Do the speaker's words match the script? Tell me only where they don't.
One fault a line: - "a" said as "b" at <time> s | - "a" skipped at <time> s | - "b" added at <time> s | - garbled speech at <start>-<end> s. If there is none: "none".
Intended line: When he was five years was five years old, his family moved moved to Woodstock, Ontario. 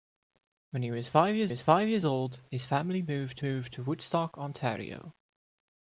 none